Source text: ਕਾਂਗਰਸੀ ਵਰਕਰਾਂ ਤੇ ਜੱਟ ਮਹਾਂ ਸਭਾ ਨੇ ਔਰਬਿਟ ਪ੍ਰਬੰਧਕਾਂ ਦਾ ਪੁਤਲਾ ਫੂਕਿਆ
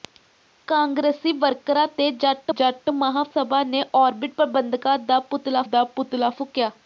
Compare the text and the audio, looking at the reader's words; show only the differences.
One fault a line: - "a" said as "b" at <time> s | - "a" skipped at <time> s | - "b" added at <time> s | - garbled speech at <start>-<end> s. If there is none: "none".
- "ਜੱਟ" added at 2.5 s
- "ਦਾ ਪੁਤਲਾ" added at 5.6 s